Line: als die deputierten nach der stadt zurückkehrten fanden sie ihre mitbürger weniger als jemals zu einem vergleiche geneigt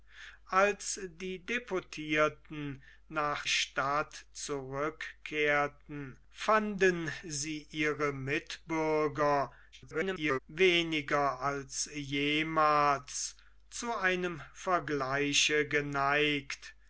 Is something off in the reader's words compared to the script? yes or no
yes